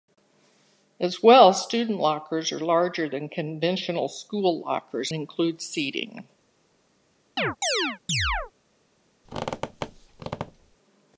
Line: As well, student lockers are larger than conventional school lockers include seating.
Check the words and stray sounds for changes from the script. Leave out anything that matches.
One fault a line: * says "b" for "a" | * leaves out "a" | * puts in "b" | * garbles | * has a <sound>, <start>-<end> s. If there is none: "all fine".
* has a chirp, 7.4-8.5 s
* has a squeak, 9.2-10.8 s